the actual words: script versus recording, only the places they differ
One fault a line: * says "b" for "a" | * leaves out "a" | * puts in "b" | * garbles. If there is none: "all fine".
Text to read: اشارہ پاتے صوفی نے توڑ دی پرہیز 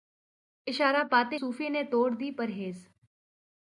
all fine